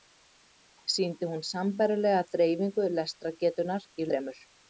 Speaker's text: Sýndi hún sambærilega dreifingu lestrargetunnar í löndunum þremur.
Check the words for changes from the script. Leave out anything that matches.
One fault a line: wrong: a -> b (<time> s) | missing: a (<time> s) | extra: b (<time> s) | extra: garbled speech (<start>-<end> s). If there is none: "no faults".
missing: löndunum (4.1 s)